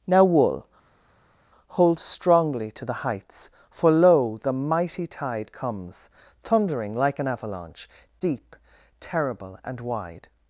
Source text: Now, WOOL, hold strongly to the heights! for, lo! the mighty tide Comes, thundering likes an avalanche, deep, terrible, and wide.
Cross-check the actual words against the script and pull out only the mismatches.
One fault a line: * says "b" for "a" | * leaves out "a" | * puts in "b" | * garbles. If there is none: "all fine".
* says "like" for "likes"